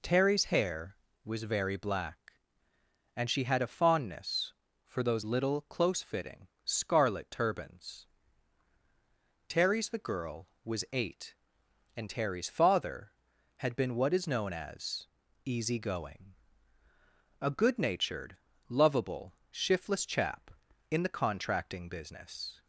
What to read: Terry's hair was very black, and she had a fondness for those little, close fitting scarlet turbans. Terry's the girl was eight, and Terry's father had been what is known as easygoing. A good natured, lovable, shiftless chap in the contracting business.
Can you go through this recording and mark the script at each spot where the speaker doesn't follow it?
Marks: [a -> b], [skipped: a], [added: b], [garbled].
Terry's hair was very black, and she had a fondness for those little, close fitting scarlet turbans. Terry's the girl was eight, and Terry's father had been what is known as easygoing. A good natured, lovable, shiftless chap in the contracting business.